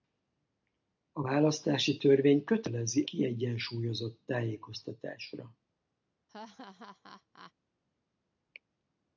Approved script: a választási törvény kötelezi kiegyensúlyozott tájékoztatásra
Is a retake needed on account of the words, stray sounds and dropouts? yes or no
yes